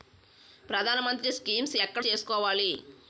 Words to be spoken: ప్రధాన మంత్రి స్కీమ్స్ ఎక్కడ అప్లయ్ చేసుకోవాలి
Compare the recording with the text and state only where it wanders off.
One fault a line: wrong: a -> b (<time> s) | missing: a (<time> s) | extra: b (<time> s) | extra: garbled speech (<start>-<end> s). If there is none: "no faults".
missing: అప్లయ్ (2.1 s)